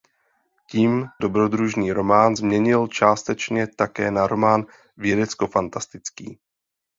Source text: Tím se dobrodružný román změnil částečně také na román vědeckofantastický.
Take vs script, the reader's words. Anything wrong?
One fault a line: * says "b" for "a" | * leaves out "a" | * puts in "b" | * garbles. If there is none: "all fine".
* leaves out "se"